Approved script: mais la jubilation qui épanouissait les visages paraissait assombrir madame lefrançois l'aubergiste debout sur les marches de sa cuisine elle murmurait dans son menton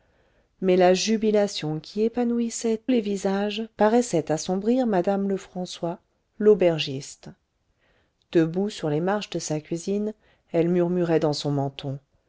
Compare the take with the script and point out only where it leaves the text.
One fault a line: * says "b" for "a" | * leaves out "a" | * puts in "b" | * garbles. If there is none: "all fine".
all fine